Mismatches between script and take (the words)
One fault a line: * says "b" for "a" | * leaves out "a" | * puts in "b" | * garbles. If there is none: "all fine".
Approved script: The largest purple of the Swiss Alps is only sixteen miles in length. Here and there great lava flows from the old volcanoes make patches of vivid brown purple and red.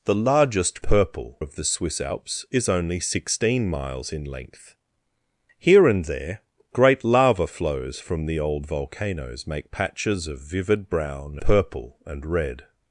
all fine